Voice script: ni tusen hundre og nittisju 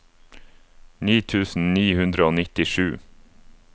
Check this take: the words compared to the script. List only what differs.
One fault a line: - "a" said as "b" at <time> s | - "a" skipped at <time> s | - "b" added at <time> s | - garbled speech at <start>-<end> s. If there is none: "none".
- "ni" added at 1.8 s